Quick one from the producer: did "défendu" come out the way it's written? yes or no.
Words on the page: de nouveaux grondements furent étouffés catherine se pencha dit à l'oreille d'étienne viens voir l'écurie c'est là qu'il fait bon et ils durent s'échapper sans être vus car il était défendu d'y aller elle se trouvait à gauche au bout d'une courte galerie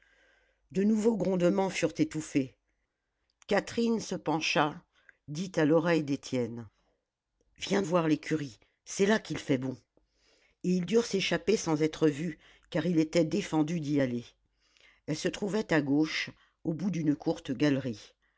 yes